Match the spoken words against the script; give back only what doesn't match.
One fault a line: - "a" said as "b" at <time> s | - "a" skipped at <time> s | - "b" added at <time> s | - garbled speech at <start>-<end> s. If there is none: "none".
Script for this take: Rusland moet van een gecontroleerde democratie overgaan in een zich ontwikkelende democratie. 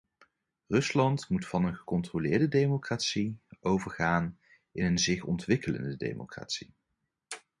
none